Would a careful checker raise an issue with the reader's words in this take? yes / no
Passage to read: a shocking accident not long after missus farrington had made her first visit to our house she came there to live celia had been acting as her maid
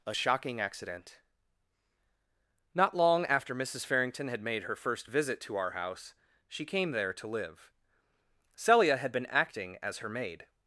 no